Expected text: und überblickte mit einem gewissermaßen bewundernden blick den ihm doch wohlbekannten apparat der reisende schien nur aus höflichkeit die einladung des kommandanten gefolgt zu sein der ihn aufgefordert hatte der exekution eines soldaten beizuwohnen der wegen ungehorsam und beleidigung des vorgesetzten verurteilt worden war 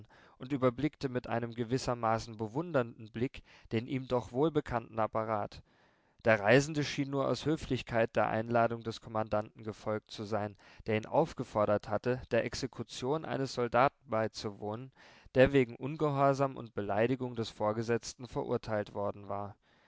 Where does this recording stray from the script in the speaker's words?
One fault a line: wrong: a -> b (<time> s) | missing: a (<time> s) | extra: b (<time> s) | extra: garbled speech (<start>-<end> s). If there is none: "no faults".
wrong: die -> der (8.1 s)